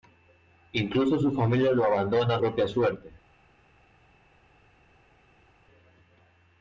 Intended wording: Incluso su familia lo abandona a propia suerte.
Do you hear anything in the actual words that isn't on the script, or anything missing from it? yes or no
no